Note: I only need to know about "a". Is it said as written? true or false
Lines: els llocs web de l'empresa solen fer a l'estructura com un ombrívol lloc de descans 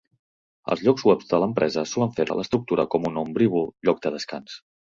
true